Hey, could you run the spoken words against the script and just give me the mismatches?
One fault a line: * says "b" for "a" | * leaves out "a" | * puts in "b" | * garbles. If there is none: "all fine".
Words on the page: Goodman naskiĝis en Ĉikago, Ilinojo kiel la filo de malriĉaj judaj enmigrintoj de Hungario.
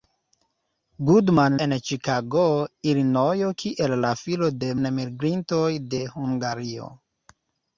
* leaves out "naskiĝis"
* leaves out "malriĉaj judaj"